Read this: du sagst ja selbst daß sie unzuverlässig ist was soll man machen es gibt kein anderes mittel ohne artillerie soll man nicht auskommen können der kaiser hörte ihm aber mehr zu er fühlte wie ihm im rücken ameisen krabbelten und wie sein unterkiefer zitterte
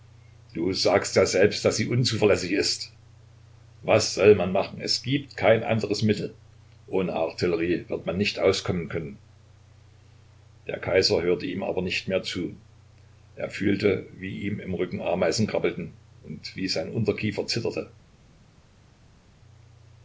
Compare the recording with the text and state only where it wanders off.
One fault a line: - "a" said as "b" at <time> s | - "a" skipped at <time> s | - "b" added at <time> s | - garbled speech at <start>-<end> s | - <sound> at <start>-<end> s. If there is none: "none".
- "soll" said as "wird" at 7.9 s
- "nicht" added at 11.8 s